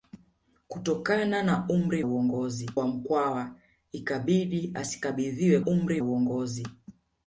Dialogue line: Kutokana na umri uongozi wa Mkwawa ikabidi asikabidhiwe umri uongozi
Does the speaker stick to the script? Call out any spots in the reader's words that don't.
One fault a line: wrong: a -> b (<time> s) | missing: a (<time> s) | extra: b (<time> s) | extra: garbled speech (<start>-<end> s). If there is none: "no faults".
no faults